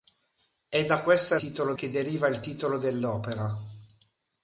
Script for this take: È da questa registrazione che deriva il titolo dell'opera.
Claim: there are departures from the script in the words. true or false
true